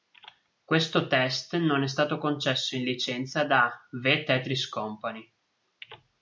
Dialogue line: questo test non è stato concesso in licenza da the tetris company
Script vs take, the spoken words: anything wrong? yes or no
no